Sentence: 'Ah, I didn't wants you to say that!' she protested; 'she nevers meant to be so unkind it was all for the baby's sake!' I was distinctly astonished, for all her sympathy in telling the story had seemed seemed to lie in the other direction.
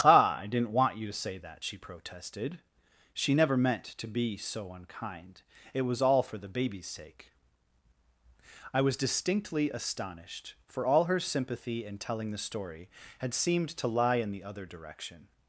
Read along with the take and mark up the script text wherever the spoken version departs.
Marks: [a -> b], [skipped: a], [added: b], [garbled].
'Ah, I didn't [wants -> want] you to say that!' she protested; 'she [nevers -> never] meant to be so unkind it was all for the baby's sake!' I was distinctly astonished, for all her sympathy in telling the story had seemed [skipped: seemed] to lie in the other direction.